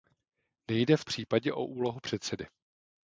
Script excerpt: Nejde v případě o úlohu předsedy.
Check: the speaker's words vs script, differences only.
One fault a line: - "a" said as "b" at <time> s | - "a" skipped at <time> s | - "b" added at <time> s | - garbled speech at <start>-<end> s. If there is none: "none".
none